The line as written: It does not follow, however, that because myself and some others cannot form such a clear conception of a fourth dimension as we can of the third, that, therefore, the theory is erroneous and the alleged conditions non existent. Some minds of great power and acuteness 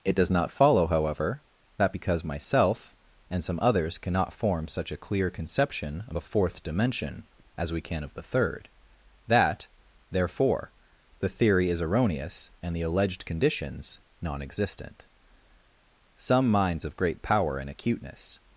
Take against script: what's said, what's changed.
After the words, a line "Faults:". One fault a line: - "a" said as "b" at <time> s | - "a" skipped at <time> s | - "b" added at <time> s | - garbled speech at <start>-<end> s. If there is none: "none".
It does not follow, however, that because myself and some others cannot form such a clear conception of a fourth dimension as we can of the third, that, therefore, the theory is erroneous and the alleged conditions non existent. Some minds of great power and acuteness
Faults:
none